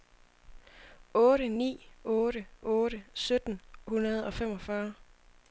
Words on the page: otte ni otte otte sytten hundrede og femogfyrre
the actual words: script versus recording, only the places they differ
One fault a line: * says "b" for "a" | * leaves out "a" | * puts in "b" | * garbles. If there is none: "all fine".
all fine